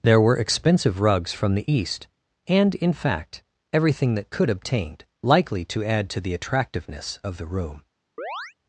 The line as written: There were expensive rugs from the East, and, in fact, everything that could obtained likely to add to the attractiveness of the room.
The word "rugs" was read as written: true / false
true